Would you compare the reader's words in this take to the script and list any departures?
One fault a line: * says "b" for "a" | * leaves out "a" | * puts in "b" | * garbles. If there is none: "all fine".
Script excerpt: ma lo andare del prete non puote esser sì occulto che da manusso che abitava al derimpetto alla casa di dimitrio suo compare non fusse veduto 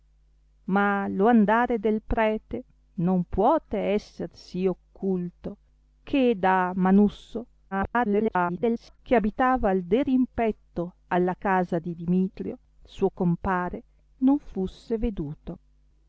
* garbles